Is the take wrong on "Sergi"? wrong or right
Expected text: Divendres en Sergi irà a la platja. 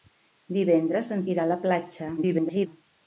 wrong